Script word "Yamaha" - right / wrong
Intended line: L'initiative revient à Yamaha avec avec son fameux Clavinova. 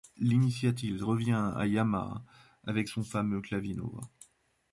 right